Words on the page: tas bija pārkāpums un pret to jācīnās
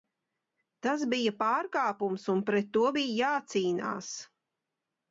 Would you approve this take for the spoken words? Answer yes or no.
no